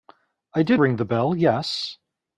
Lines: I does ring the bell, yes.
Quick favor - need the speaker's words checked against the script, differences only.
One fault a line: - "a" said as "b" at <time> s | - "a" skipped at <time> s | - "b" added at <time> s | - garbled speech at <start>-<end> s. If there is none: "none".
- "does" said as "did" at 0.6 s